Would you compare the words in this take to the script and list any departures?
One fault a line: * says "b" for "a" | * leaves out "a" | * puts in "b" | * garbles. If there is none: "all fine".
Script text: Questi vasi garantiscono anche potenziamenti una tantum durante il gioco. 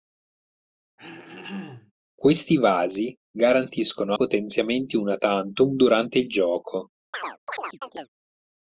* leaves out "anche"